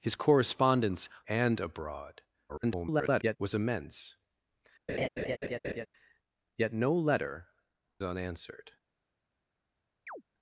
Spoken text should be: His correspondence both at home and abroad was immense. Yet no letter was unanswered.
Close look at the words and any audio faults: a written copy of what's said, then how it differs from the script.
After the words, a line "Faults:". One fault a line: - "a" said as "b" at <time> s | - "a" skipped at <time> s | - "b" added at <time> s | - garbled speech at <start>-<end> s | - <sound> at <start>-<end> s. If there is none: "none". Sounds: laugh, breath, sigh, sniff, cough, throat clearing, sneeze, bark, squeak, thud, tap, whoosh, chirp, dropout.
His correspondence and abroad [garbled] was immense. Yet no letter unanswered.
Faults:
- "both at home" skipped at 1.1 s
- garbled speech at 2.5-3.4 s
- laugh at 4.9-5.9 s
- "was" skipped at 7.5 s
- chirp at 10.1-10.2 s